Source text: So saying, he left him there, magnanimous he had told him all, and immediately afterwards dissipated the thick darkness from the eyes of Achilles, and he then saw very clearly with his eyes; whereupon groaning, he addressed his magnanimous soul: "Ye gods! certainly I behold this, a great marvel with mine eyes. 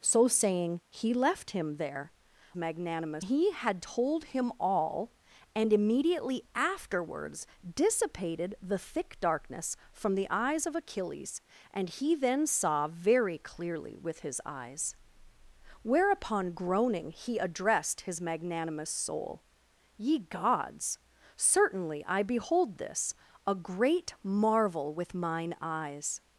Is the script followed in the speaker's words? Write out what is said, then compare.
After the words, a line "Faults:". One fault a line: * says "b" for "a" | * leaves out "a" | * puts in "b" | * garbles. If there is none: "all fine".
So saying, he left him there, magnanimous he had told him all, and immediately afterwards dissipated the thick darkness from the eyes of Achilles, and he then saw very clearly with his eyes; whereupon groaning, he addressed his magnanimous soul: "Ye gods! certainly I behold this, a great marvel with mine eyes.
Faults:
all fine